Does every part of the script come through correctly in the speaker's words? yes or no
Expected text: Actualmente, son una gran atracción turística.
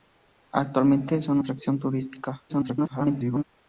no